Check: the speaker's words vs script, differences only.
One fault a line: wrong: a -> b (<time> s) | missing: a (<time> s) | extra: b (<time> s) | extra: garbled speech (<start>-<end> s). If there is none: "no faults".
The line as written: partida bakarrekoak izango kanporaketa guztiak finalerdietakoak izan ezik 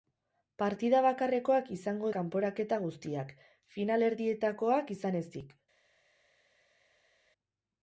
no faults